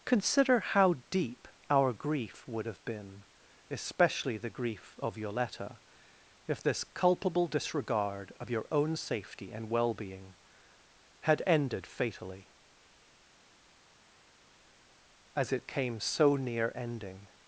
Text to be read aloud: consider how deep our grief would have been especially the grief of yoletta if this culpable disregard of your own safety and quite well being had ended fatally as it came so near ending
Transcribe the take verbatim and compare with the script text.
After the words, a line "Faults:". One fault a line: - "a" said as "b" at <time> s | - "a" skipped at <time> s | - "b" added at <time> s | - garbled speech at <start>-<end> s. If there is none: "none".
consider how deep our grief would have been especially the grief of yoletta if this culpable disregard of your own safety and well being had ended fatally as it came so near ending
Faults:
- "quite" skipped at 9.7 s